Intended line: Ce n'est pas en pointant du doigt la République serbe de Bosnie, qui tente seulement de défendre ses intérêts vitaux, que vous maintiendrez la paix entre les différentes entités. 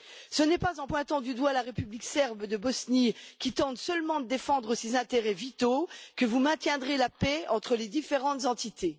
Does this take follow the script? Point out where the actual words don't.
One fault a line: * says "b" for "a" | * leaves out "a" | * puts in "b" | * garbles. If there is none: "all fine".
all fine